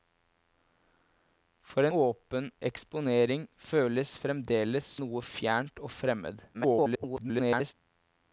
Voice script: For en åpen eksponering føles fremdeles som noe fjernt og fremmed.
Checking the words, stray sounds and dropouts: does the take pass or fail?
fail